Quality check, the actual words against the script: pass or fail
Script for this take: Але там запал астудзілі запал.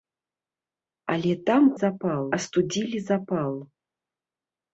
pass